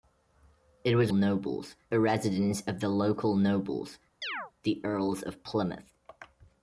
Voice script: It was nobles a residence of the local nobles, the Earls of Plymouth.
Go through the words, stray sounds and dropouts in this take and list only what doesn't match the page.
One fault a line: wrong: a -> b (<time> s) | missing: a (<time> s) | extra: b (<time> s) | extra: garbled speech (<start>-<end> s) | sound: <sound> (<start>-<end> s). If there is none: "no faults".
sound: chirp (4.2-4.5 s)